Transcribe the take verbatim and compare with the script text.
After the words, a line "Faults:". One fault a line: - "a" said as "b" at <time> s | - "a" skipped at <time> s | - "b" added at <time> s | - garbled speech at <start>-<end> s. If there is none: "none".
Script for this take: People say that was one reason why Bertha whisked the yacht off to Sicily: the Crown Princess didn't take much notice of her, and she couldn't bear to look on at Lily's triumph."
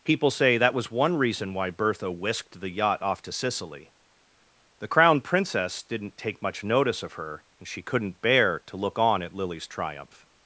People say that was one reason why Bertha whisked the yacht off to Sicily: the Crown Princess didn't take much notice of her, and she couldn't bear to look on at Lily's triumph."
Faults:
none